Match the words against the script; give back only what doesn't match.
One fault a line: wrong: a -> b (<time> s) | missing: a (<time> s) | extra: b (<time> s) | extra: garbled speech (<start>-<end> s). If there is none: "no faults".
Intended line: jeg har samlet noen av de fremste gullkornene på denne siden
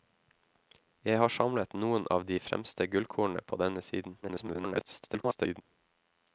extra: garbled speech (4.2-5.6 s)